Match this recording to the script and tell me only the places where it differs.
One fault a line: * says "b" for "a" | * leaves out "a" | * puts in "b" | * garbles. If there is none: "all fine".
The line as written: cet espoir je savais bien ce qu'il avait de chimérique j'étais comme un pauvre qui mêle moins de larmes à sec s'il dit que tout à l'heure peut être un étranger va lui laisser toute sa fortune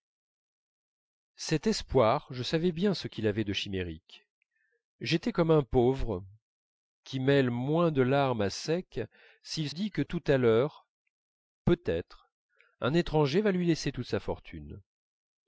all fine